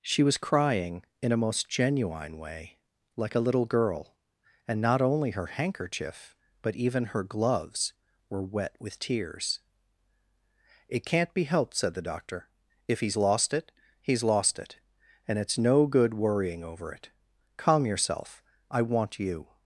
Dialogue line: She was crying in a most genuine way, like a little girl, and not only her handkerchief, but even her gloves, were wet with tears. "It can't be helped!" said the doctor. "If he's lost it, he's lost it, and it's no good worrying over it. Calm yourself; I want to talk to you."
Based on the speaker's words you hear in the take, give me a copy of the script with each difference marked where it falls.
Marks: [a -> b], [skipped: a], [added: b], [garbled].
She was crying in a most genuine way, like a little girl, and not only her handkerchief, but even her gloves, were wet with tears. "It can't be helped!" said the doctor. "If he's lost it, he's lost it, and it's no good worrying over it. Calm yourself; I want [skipped: to talk to] you."